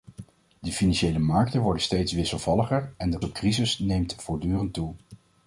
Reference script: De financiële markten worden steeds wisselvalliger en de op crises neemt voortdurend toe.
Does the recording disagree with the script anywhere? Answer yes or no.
no